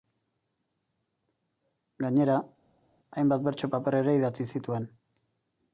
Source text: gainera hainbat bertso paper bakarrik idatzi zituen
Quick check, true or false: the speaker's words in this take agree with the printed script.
false